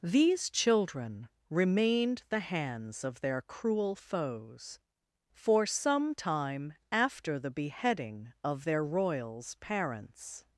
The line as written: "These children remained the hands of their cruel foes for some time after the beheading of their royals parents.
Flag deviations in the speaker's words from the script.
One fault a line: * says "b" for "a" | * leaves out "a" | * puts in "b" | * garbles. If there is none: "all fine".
all fine